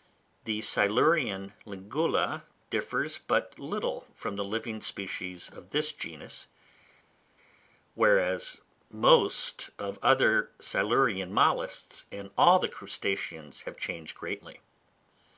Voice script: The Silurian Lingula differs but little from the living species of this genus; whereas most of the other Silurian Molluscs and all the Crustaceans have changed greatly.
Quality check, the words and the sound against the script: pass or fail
pass